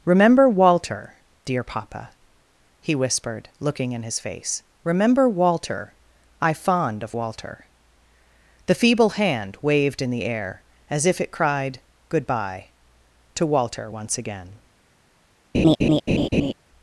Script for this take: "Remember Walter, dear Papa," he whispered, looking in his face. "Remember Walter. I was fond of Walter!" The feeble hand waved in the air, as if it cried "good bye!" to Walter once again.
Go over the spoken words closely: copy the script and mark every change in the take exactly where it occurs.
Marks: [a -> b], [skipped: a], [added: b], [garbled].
"Remember Walter, dear Papa," he whispered, looking in his face. "Remember Walter. I [skipped: was] fond of Walter!" The feeble hand waved in the air, as if it cried "good bye!" to Walter once again.